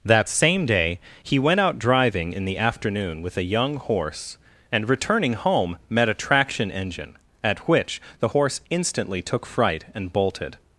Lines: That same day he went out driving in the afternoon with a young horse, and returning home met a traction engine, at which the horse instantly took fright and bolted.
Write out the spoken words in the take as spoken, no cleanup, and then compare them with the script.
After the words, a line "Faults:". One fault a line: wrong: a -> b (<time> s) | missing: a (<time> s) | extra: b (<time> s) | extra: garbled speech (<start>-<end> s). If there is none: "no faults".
That same day he went out driving in the afternoon with a young horse, and returning home met a traction engine, at which the horse instantly took fright and bolted.
Faults:
no faults